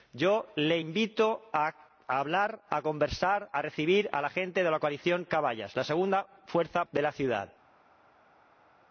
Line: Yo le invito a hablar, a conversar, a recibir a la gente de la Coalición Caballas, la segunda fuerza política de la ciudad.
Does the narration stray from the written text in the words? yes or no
yes